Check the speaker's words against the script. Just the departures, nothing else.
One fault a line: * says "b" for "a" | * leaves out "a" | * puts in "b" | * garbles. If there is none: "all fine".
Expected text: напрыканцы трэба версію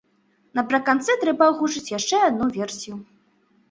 * puts in "агучыць яшчэ адну"